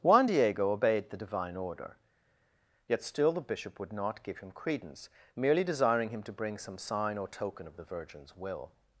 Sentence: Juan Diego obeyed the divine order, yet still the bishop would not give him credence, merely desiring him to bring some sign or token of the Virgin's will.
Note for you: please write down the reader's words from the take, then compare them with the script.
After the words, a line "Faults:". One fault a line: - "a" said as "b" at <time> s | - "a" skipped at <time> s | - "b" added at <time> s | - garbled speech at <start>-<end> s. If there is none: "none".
Juan Diego obeyed the divine order, yet still the bishop would not give him credence, merely desiring him to bring some sign or token of the Virgin's will.
Faults:
none